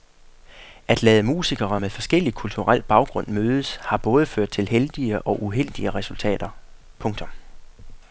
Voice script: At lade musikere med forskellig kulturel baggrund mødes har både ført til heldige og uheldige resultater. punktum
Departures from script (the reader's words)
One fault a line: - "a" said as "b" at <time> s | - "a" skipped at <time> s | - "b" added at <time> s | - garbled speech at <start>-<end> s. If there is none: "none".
none